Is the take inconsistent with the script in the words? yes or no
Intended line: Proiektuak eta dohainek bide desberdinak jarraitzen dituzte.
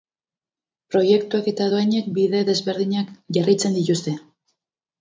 no